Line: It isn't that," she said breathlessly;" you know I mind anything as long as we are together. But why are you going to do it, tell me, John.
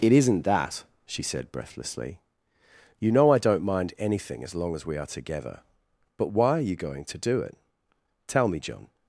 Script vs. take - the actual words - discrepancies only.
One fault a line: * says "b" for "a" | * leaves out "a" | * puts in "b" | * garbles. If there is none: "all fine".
* puts in "don't"